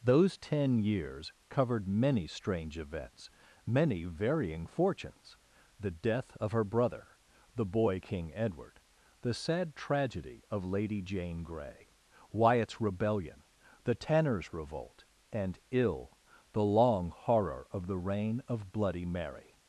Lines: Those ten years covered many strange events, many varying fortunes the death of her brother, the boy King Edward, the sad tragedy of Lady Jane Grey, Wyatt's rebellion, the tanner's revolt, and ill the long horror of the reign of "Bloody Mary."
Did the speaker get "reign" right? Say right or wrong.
right